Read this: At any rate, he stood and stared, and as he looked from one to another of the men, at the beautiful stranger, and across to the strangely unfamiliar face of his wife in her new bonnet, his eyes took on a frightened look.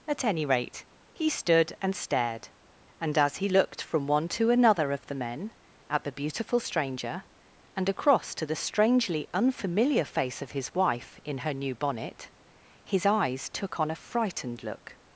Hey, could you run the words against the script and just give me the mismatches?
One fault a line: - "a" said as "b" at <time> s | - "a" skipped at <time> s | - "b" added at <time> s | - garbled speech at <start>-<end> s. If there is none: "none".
none